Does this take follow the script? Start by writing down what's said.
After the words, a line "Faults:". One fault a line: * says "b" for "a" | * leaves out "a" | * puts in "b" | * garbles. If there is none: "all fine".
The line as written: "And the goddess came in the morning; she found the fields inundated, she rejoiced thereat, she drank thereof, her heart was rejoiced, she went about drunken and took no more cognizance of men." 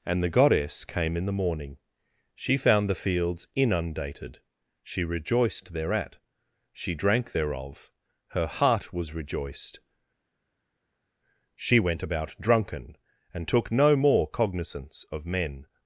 "And the goddess came in the morning; she found the fields inundated, she rejoiced thereat, she drank thereof, her heart was rejoiced, she went about drunken and took no more cognizance of men."
Faults:
all fine